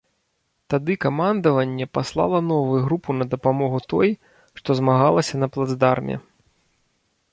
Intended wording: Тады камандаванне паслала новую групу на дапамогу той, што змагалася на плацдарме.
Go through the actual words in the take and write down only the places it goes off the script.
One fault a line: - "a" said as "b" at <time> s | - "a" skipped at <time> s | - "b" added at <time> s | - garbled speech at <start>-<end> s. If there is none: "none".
none